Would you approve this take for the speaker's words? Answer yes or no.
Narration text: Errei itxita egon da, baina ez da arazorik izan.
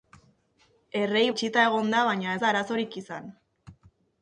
yes